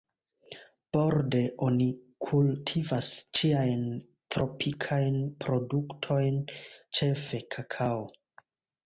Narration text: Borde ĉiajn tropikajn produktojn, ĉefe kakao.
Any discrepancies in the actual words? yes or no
yes